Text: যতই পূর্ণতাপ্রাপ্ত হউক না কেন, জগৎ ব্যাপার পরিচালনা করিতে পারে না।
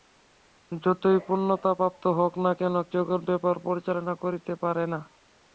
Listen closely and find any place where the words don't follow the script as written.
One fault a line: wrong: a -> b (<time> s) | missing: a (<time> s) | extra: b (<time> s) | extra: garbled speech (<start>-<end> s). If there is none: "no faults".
no faults